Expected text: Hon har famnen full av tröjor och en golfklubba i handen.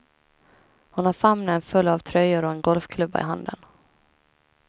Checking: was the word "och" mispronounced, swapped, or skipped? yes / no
no